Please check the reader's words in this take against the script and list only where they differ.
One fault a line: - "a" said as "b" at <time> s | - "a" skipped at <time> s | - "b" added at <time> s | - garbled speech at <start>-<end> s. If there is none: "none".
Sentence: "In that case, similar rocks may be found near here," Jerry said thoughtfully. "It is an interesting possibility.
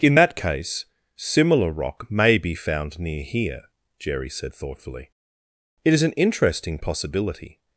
- "rocks" said as "rock" at 1.7 s